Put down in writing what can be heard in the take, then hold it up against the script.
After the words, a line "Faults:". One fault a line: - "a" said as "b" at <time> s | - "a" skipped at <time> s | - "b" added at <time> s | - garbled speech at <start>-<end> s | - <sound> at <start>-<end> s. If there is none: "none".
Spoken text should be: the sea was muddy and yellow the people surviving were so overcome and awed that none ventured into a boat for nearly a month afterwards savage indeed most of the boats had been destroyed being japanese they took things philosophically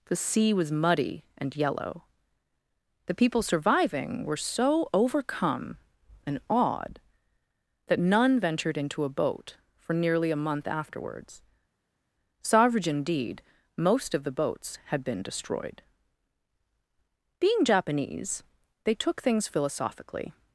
the sea was muddy and yellow the people surviving were so overcome and awed that none ventured into a boat for nearly a month afterwards savage indeed most of the boats had been destroyed being japanese they took things philosophically
Faults:
none